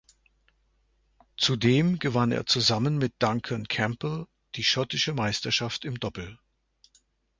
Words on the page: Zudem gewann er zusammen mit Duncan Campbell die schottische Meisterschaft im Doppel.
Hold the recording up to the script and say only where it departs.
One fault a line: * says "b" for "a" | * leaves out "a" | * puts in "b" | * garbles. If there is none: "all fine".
all fine